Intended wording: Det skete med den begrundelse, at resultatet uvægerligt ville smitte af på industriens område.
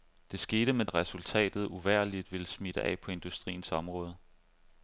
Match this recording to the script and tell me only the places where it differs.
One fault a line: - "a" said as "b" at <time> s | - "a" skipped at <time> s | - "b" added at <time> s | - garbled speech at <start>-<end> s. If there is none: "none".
- "den begrundelse" skipped at 0.8 s